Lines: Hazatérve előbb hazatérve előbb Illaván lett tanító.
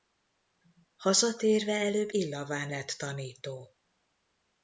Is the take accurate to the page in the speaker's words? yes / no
no